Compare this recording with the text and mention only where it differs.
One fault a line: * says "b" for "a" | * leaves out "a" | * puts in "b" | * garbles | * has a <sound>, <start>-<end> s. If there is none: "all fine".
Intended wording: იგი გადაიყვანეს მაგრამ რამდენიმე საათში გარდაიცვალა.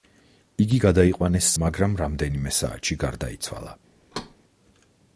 * has a thud, 4.1-4.4 s